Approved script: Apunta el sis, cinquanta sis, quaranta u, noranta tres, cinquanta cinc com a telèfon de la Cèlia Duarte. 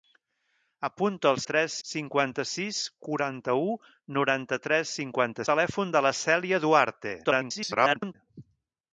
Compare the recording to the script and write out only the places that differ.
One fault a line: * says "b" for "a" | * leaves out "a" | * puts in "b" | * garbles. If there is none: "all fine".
* says "tres" for "sis"
* leaves out "cinc com"
* garbles